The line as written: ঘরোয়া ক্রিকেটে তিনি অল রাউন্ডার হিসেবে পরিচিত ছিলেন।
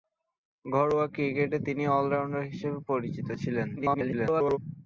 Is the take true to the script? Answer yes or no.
no